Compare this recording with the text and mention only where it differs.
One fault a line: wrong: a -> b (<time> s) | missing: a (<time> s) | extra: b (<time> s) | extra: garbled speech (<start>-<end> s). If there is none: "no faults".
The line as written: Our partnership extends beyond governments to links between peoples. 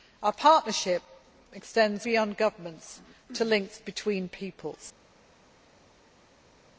no faults